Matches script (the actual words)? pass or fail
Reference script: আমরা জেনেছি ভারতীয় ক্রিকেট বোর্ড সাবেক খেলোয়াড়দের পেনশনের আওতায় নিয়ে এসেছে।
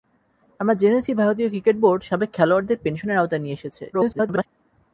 fail